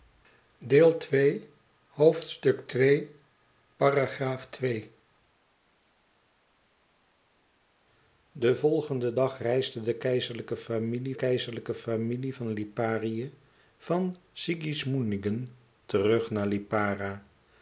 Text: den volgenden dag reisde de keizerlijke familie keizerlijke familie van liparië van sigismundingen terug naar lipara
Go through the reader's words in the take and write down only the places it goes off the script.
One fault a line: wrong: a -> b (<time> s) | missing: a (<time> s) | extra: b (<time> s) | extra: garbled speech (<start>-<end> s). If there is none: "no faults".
no faults